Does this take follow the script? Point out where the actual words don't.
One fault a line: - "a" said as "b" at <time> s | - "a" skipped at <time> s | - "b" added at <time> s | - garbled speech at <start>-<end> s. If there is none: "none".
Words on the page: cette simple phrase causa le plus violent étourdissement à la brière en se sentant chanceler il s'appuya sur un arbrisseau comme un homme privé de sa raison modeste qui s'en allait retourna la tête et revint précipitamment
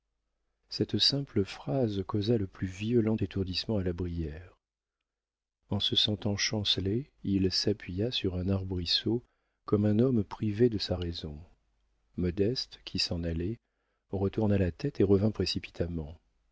none